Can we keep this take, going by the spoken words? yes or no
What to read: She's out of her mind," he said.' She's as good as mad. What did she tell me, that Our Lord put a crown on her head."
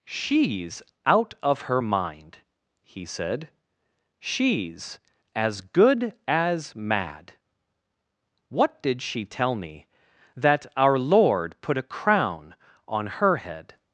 yes